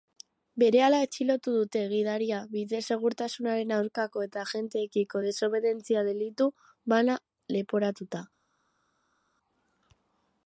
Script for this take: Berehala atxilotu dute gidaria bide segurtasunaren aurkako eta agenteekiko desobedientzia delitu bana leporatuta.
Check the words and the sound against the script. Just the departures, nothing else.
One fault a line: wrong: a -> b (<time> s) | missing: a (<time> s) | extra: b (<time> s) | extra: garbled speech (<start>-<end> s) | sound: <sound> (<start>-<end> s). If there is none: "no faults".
no faults